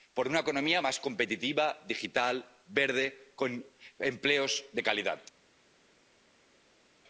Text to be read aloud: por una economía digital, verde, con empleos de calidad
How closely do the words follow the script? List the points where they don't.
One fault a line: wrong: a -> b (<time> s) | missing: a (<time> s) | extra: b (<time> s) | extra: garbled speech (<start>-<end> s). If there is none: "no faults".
extra: más competitiva (0.8 s)